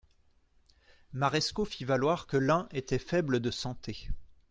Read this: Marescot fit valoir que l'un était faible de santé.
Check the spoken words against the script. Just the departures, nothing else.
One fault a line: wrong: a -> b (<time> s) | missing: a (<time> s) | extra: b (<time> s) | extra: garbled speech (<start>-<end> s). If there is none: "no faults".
no faults